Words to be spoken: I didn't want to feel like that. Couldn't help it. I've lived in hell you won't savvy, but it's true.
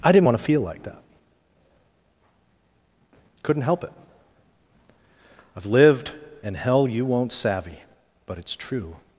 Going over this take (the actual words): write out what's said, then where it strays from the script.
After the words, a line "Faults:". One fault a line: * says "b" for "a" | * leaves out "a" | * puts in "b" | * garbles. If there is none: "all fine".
I didn't want to feel like that. Couldn't help it. I've lived in hell you won't savvy, but it's true.
Faults:
all fine